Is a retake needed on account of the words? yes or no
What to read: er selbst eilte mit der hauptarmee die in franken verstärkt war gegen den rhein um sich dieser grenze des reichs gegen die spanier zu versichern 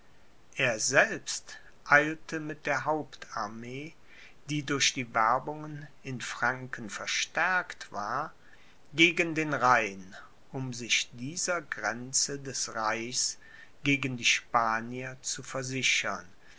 yes